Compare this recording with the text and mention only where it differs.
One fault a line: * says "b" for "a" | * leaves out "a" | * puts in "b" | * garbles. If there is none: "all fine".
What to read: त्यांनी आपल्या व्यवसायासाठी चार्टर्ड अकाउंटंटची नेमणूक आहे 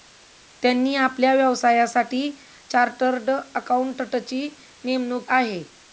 all fine